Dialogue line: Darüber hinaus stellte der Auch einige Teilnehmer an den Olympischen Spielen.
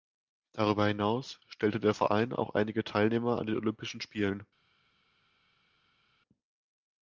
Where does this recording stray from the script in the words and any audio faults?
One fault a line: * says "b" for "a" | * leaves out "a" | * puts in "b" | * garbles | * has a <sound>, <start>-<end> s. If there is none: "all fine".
* puts in "Verein"